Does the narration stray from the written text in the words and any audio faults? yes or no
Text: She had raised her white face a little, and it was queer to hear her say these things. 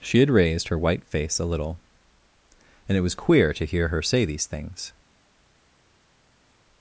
no